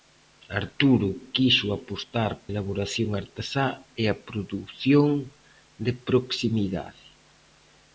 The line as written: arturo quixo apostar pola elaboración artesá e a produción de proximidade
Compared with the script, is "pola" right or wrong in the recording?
wrong